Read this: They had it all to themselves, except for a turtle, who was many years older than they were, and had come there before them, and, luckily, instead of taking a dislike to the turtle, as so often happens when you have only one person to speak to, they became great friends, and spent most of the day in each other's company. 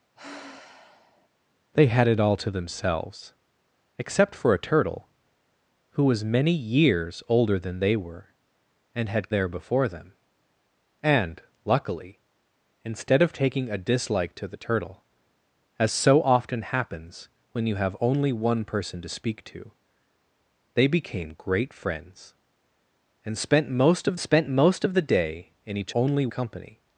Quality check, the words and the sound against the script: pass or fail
fail